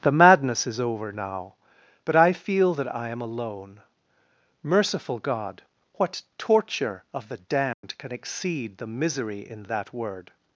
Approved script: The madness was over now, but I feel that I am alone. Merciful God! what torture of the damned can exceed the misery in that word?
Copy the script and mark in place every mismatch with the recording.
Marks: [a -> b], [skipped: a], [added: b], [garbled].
The madness [was -> is] over now, but I feel that I am alone. Merciful God! what torture of the damned can exceed the misery in that word?